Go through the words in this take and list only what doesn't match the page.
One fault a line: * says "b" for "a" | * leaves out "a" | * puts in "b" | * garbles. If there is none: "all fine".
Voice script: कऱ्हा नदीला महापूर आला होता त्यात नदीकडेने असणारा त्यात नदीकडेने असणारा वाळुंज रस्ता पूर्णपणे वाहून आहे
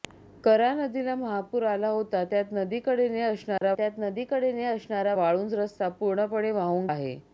all fine